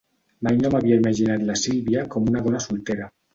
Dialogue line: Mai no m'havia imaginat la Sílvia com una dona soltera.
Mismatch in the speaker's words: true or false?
false